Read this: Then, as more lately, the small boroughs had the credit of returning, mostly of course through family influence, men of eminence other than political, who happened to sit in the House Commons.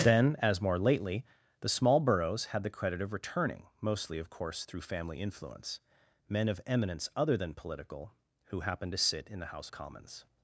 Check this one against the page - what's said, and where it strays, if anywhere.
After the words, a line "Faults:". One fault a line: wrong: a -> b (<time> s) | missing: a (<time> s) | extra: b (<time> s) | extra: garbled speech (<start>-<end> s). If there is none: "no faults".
Then, as more lately, the small boroughs had the credit of returning, mostly of course through family influence, men of eminence other than political, who happened to sit in the House Commons.
Faults:
no faults